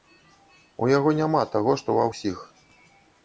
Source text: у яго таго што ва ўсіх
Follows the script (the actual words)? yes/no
no